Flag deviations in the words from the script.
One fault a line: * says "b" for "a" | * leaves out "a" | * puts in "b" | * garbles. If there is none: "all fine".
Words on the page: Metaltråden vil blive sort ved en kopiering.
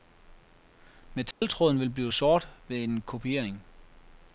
all fine